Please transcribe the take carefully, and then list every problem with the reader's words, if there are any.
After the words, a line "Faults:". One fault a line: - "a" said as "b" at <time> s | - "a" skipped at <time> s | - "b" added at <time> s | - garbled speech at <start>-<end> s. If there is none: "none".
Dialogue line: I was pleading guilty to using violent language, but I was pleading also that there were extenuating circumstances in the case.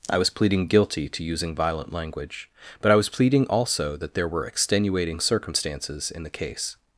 I was pleading guilty to using violent language, but I was pleading also that there were extenuating circumstances in the case.
Faults:
none